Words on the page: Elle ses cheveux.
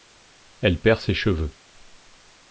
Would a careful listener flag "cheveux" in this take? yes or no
no